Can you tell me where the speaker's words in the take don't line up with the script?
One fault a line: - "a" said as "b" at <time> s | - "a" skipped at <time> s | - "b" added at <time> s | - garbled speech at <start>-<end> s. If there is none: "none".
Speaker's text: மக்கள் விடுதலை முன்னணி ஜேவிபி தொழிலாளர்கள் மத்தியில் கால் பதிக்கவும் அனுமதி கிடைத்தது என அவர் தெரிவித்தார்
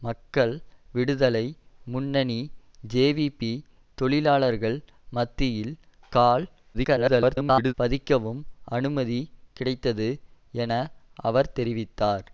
- garbled speech at 6.7-7.7 s